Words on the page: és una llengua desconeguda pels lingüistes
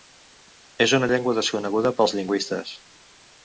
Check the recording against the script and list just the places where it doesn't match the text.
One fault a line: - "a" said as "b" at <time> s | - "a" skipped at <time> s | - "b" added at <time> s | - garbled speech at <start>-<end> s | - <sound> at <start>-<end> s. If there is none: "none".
none